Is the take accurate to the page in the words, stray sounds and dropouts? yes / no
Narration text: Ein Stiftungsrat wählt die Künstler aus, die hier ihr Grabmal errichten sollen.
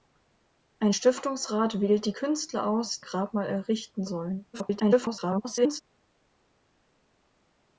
no